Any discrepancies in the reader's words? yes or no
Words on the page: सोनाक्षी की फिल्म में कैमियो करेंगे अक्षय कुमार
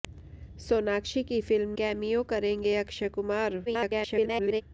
yes